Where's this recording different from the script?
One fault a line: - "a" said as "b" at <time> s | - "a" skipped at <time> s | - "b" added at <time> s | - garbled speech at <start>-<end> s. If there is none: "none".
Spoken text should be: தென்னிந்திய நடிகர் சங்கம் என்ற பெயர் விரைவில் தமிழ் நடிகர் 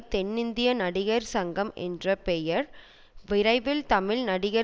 none